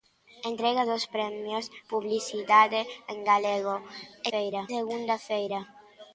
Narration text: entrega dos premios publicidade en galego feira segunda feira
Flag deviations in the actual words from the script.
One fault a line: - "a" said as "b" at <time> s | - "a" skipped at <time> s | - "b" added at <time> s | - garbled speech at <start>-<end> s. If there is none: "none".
none